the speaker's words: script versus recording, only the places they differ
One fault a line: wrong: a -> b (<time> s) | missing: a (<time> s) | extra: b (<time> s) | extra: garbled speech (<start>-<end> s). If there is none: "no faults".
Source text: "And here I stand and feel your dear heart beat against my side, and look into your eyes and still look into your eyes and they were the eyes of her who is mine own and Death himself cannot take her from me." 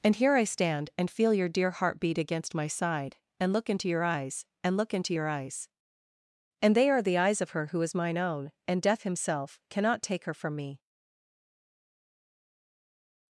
missing: still (4.8 s)
wrong: were -> are (6.9 s)